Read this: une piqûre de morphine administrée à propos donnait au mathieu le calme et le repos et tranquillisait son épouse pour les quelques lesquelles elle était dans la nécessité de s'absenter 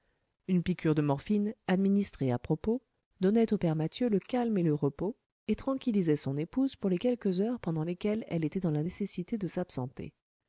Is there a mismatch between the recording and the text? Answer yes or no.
yes